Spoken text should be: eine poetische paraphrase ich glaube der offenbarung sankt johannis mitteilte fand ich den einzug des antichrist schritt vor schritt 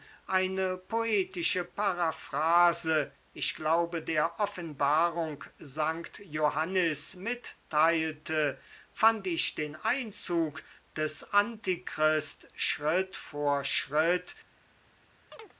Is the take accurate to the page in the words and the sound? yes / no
no